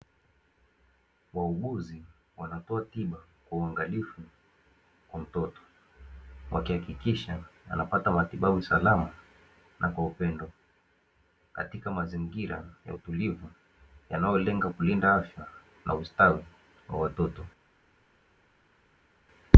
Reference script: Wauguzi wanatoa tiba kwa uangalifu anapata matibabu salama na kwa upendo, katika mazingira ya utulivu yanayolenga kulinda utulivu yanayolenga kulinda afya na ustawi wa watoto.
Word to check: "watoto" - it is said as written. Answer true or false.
true